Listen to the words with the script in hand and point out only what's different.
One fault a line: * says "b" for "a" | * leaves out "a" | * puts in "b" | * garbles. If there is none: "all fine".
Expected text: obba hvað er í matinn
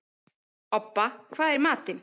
all fine